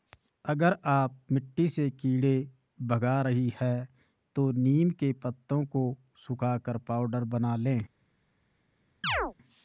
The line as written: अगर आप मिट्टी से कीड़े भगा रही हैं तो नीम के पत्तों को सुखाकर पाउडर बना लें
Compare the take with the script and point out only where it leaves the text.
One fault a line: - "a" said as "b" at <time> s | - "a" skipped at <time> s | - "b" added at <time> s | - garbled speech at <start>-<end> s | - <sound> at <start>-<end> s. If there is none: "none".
- chirp at 9.0-9.3 s